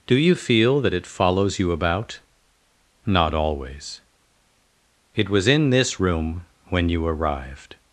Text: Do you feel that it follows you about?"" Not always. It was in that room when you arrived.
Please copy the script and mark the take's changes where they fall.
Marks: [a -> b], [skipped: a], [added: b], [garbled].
Do you feel that it follows you about?"" Not always. It was in [that -> this] room when you arrived.